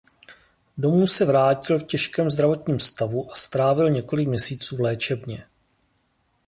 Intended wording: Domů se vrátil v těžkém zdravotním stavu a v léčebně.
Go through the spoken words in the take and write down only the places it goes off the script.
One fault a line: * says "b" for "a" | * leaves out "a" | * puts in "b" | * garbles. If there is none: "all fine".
* puts in "strávil několik měsíců"